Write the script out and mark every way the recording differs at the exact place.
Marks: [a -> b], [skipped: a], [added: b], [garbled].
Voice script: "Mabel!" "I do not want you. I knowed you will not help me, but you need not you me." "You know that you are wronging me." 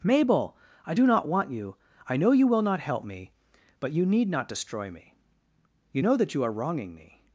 "Mabel!" "I do not want you. I [knowed -> know] you will not help me, but you need not [you -> destroy] me." "You know that you are wronging me."